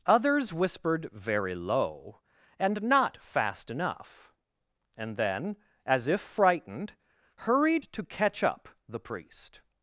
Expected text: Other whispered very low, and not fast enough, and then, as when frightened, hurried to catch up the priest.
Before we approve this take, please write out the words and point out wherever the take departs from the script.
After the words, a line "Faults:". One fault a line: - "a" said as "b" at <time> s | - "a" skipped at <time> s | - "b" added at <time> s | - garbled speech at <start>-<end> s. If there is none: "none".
Others whispered very low, and not fast enough, and then, as if frightened, hurried to catch up the priest.
Faults:
- "Other" said as "Others" at 0.1 s
- "when" said as "if" at 6.1 s